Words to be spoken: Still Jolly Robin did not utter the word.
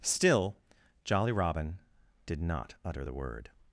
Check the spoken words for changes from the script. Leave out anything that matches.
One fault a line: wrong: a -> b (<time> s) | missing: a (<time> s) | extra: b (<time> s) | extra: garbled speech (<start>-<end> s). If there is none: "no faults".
no faults